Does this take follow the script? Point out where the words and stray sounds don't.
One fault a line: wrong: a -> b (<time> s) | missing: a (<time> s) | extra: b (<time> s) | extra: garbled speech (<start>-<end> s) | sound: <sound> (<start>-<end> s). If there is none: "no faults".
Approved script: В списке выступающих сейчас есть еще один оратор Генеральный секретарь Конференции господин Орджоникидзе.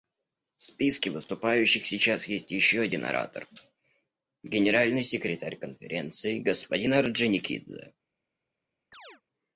sound: chirp (8.9-9.2 s)